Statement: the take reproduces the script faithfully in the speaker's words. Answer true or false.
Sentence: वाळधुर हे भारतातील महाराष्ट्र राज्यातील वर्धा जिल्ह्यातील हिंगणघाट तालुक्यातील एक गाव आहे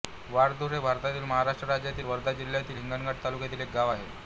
true